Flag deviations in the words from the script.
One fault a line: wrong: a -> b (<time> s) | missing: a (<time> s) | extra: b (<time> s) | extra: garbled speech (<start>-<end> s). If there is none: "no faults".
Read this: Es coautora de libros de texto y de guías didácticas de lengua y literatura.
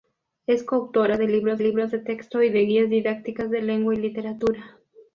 extra: libros (1.6 s)